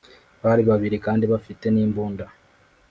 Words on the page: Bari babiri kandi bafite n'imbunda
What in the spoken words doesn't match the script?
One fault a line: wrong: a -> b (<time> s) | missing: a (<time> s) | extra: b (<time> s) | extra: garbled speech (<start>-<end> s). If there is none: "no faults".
no faults